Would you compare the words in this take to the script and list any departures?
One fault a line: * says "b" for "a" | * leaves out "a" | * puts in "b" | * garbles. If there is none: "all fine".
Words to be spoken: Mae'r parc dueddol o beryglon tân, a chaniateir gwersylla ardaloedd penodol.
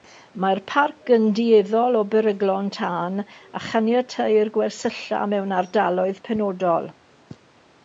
* puts in "yn"
* puts in "mewn"